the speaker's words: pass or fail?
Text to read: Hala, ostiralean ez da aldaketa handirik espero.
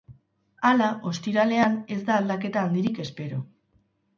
pass